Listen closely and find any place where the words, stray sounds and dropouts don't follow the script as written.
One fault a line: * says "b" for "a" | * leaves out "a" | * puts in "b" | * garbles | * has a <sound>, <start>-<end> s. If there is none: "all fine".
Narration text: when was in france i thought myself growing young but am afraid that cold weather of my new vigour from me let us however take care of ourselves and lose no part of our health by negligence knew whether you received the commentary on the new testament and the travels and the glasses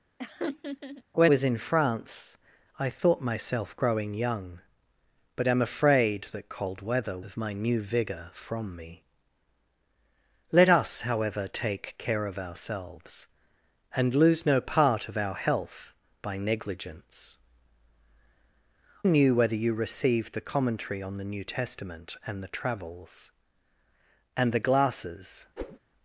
* has a laugh, 0.2-1.0 s
* has a whoosh, 25.6-25.8 s